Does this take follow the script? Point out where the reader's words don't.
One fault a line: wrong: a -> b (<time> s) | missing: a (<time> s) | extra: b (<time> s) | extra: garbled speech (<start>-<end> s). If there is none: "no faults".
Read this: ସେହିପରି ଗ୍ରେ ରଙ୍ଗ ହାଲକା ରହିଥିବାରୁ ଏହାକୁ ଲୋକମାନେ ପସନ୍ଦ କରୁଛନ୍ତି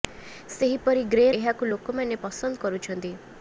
missing: ରଙ୍ଗ ହାଲକା ରହିଥିବାରୁ (1.2 s)